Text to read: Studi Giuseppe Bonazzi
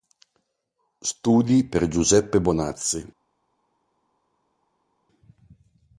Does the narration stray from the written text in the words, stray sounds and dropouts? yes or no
yes